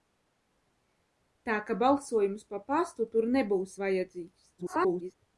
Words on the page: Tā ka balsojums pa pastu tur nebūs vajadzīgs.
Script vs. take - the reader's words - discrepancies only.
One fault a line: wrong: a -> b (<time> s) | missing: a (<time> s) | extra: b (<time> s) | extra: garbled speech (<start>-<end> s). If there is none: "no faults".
extra: garbled speech (4.6-5.2 s)